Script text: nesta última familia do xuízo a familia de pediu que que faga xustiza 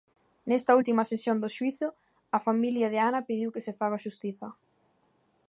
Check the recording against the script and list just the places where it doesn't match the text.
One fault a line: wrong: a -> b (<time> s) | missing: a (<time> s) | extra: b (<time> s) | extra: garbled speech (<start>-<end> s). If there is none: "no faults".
wrong: familia -> sesión (1.1 s)
extra: ana (3.1 s)
wrong: que -> se (3.7 s)